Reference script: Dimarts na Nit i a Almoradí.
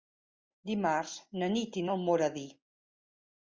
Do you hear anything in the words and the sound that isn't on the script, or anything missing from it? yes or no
no